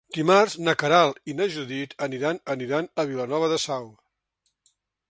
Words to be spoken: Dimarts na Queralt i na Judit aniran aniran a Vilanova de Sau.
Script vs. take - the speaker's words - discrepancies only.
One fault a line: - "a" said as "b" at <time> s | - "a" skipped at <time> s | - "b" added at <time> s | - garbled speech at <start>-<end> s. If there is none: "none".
none